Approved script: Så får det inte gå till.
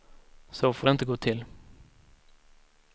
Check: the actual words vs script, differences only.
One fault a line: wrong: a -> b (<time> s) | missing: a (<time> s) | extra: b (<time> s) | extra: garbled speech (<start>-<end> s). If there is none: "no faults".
no faults